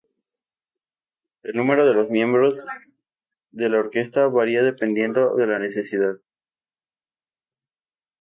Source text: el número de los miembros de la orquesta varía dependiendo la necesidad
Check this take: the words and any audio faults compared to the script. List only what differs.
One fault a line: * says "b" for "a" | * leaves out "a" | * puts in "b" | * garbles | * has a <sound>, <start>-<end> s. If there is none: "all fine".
* puts in "de"